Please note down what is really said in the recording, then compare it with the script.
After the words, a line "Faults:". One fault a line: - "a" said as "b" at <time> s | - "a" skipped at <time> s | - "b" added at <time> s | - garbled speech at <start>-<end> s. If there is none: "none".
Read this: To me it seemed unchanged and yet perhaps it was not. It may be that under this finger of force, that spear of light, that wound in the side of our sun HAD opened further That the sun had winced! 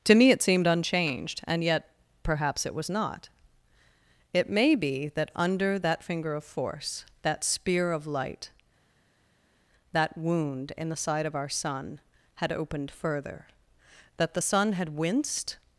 To me it seemed unchanged and yet perhaps it was not. It may be that under that finger of force, that spear of light, that wound in the side of our sun HAD opened further That the sun had winced!
Faults:
- "this" said as "that" at 5.8 s